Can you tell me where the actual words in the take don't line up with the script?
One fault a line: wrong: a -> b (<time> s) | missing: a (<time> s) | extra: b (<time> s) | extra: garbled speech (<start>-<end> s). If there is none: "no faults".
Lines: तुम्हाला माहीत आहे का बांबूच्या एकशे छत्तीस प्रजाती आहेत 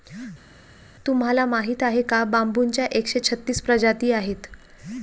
no faults